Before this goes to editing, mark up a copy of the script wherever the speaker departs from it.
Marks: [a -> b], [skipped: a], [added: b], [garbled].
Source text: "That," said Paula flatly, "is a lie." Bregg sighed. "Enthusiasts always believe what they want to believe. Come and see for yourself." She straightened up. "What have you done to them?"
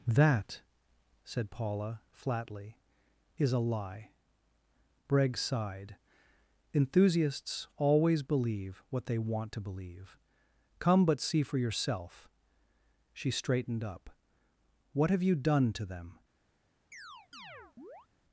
"That," said Paula flatly, "is a lie." Bregg sighed. "Enthusiasts always believe what they want to believe. Come [and -> but] see for yourself." She straightened up. "What have you done to them?"